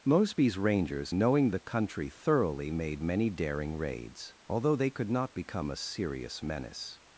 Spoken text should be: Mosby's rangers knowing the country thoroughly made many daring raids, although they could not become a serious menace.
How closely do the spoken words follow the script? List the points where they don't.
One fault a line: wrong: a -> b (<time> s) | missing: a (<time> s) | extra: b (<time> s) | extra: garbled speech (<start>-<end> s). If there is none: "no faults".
no faults